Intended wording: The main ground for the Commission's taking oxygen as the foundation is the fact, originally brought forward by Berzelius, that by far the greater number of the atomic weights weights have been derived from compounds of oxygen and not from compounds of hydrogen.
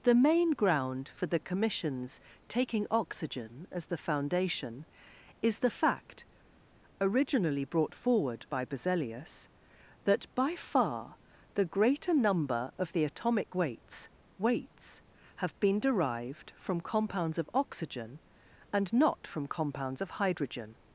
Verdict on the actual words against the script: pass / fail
pass